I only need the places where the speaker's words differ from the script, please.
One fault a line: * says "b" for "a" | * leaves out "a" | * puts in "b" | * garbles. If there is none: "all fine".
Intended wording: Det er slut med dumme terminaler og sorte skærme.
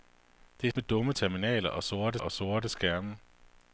* leaves out "slut"
* puts in "og sorte"